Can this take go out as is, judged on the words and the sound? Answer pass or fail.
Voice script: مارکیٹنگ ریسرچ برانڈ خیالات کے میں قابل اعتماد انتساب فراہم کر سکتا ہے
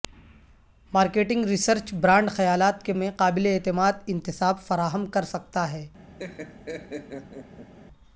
fail